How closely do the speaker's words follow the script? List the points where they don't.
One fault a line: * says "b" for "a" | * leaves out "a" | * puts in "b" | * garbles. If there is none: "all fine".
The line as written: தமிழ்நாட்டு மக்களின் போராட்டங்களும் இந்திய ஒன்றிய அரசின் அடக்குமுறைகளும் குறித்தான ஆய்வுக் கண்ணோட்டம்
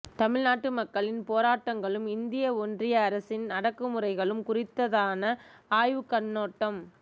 all fine